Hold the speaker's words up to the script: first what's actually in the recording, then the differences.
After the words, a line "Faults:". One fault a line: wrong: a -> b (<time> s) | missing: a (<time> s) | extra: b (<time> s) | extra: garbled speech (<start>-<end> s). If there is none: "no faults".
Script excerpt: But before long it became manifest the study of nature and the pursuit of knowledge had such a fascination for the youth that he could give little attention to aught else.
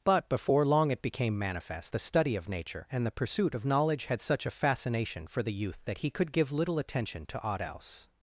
But before long it became manifest the study of nature and the pursuit of knowledge had such a fascination for the youth that he could give little attention to aught else.
Faults:
no faults